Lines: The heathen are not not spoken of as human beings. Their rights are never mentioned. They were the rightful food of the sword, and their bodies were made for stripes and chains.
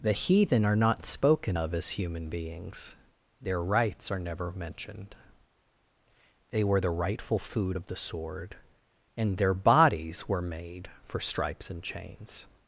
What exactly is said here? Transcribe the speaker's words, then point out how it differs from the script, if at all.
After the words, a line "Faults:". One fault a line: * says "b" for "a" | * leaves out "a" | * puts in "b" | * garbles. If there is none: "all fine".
The heathen are not spoken of as human beings. Their rights are never mentioned. They were the rightful food of the sword, and their bodies were made for stripes and chains.
Faults:
* leaves out "not"